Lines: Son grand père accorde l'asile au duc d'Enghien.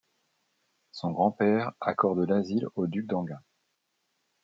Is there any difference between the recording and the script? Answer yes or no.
no